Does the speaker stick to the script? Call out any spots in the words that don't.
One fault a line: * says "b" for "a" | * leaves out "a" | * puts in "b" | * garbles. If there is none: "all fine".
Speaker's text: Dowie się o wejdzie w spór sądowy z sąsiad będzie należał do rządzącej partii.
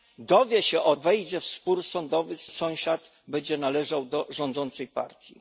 all fine